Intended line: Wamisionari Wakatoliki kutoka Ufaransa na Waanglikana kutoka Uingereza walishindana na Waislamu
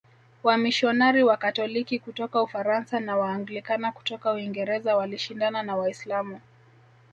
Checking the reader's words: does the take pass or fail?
pass